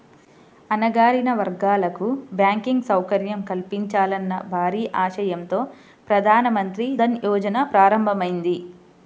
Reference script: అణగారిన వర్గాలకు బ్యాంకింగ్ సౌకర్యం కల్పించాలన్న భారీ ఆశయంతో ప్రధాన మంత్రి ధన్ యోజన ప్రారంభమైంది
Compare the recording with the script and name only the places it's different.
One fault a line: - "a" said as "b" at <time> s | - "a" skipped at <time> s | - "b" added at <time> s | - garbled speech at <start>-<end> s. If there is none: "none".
none